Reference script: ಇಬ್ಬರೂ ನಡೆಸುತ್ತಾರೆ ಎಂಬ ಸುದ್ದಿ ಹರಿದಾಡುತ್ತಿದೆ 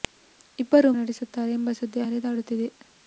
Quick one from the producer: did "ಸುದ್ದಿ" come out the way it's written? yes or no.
yes